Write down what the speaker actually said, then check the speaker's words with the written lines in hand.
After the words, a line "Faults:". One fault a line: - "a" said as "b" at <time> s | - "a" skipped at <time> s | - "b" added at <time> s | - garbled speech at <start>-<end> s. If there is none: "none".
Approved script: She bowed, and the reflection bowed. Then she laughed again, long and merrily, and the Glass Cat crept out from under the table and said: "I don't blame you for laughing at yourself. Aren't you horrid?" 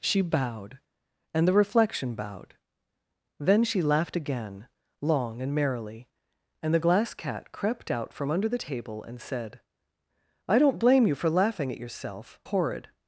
She bowed, and the reflection bowed. Then she laughed again, long and merrily, and the Glass Cat crept out from under the table and said: "I don't blame you for laughing at yourself. Horrid?"
Faults:
- "Aren't you" skipped at 12.4 s